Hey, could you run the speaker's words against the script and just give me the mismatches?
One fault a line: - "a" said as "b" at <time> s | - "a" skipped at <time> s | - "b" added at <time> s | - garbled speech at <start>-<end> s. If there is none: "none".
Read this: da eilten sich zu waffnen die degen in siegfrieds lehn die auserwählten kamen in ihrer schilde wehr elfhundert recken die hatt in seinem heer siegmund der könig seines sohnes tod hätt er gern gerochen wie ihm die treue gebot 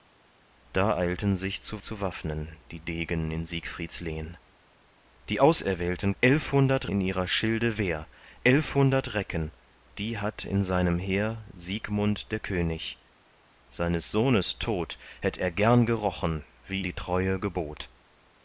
- "zu" added at 1.8 s
- "kamen" said as "elfhundert" at 6.2 s
- "ihm" skipped at 16.8 s